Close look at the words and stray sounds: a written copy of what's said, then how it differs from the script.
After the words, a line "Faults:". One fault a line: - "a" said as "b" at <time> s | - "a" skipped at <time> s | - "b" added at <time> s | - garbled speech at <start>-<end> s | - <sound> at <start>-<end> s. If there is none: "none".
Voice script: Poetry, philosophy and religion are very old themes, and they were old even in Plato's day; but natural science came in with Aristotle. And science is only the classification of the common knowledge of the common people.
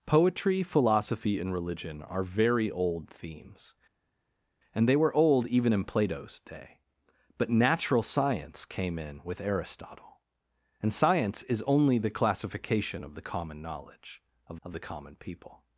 Poetry, philosophy and religion are very old themes, and they were old even in Plato's day; but natural science came in with Aristotle. And science is only the classification of the common knowledge of of the common people.
Faults:
- "of" added at 14.6 s